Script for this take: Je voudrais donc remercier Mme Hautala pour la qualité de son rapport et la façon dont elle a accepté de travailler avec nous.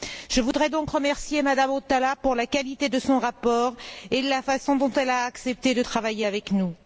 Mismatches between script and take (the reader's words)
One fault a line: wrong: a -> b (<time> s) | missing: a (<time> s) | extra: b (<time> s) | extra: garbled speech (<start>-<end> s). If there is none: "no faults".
no faults